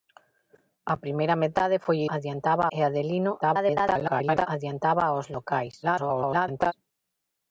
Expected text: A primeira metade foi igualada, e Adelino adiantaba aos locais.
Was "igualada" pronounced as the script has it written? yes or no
no